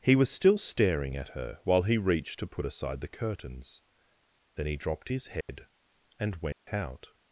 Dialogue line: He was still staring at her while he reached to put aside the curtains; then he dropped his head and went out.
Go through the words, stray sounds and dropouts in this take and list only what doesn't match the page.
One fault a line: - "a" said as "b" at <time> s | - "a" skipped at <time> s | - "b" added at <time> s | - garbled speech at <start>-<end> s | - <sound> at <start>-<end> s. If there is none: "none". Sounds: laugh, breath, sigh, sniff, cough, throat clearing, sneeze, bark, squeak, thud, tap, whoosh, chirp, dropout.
- dropout at 5.4-5.5 s
- dropout at 6.5-6.7 s